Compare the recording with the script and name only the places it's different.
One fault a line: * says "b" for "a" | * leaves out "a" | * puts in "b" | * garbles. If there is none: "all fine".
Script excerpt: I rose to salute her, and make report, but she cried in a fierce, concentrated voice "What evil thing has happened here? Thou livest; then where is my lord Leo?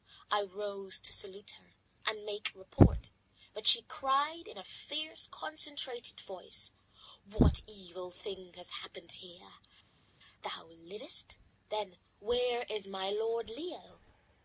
all fine